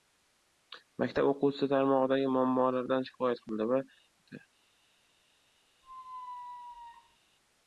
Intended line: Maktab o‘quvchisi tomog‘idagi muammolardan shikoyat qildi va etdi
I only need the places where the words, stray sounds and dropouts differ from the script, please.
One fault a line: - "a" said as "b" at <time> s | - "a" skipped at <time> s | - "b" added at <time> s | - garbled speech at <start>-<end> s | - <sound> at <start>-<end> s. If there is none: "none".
- squeak at 5.8-7.2 s